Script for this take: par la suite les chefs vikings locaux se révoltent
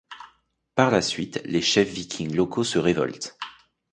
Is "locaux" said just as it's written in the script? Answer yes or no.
yes